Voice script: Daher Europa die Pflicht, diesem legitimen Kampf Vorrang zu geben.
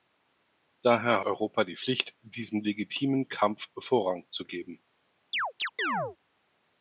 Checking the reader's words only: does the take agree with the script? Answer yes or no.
yes